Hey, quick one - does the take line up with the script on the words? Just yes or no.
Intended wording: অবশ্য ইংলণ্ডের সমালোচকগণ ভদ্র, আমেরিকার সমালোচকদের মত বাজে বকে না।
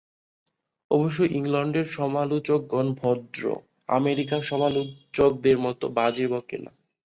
yes